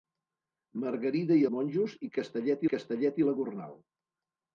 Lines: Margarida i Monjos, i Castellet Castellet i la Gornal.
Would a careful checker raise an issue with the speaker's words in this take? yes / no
no